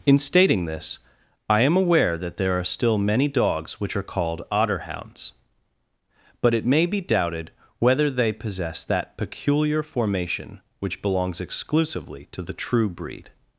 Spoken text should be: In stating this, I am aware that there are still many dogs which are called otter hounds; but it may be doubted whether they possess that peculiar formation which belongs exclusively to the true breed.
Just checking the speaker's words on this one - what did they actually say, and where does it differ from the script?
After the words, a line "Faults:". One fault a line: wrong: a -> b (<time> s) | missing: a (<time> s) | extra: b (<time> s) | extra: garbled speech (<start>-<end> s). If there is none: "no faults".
In stating this, I am aware that there are still many dogs which are called otter hounds; but it may be doubted whether they possess that peculiar formation which belongs exclusively to the true breed.
Faults:
no faults